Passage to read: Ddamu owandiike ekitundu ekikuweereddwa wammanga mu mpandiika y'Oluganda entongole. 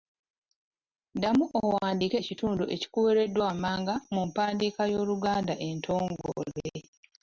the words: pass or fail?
pass